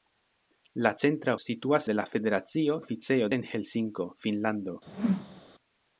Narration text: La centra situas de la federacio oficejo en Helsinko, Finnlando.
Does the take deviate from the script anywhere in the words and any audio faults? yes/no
yes